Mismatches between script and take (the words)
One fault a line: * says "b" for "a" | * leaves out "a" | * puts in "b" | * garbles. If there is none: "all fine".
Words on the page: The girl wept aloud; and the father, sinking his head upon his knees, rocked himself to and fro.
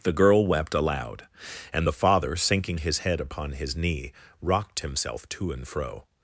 * says "knee" for "knees"